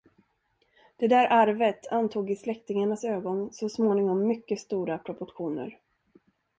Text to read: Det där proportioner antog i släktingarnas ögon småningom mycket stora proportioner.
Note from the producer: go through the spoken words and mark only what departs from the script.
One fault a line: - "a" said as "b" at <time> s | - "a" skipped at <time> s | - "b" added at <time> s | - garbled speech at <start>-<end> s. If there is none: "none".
- "proportioner" said as "arvet" at 1.3 s
- "så" added at 3.5 s